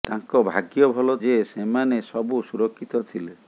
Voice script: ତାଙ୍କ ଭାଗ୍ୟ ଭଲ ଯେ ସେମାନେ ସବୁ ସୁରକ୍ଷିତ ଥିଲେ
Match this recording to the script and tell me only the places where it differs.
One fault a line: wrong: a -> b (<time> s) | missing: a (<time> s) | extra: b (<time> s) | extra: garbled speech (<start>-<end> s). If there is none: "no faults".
no faults